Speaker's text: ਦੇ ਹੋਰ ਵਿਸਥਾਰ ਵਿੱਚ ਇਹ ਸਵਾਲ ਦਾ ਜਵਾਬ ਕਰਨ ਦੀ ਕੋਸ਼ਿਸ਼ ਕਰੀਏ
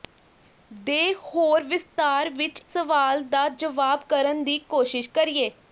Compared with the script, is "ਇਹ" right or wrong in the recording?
wrong